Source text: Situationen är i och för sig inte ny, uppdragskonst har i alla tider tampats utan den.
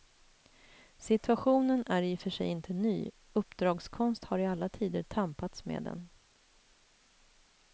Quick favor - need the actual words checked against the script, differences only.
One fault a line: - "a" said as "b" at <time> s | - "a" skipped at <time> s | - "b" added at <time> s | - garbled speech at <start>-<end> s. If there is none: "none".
- "utan" said as "med" at 5.7 s